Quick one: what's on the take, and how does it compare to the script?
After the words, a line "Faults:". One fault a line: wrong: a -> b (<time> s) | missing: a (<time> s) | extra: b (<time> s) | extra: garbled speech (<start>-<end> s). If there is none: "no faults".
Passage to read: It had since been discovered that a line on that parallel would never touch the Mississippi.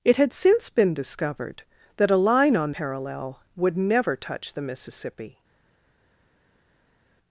It had since been discovered that a line on parallel would never touch the Mississippi.
Faults:
missing: that (2.7 s)